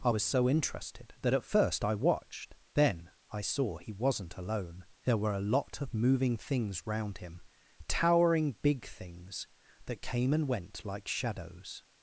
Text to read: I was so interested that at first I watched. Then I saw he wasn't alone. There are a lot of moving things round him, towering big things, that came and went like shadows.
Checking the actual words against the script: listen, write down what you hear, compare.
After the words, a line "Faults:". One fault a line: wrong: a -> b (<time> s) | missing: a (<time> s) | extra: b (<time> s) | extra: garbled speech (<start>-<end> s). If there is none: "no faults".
I was so interested that at first I watched. Then I saw he wasn't alone. There were a lot of moving things round him, towering big things, that came and went like shadows.
Faults:
wrong: are -> were (5.2 s)